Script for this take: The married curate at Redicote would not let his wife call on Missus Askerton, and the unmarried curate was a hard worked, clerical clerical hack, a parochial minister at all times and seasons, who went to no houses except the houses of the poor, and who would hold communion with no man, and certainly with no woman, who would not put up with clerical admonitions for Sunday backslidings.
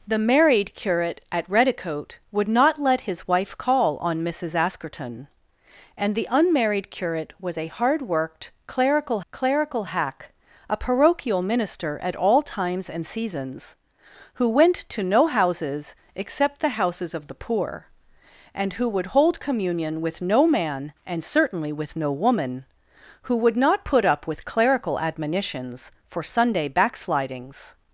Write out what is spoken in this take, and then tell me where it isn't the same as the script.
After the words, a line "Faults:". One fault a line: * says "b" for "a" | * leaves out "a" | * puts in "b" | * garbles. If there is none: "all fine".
The married curate at Redicote would not let his wife call on Missus Askerton, and the unmarried curate was a hard worked, clerical clerical hack, a parochial minister at all times and seasons, who went to no houses except the houses of the poor, and who would hold communion with no man, and certainly with no woman, who would not put up with clerical admonitions for Sunday backslidings.
Faults:
all fine